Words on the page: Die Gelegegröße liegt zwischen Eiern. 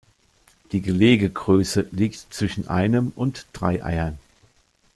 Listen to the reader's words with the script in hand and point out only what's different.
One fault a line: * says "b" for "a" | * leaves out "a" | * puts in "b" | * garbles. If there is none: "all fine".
* puts in "einem und drei"